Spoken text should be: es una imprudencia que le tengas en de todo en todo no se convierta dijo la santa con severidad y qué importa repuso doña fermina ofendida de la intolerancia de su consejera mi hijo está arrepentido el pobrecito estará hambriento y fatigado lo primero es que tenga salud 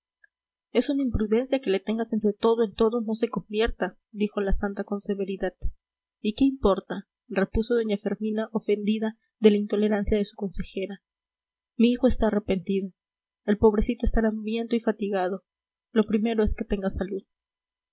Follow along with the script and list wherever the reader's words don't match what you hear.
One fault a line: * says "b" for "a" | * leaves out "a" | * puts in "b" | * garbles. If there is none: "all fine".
all fine